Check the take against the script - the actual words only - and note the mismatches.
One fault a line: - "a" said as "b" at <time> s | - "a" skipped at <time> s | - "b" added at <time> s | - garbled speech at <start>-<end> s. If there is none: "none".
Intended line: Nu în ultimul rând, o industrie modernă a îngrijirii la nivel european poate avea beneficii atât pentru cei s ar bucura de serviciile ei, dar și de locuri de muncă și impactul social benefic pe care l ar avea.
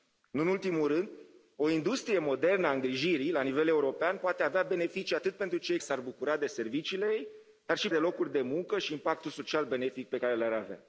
none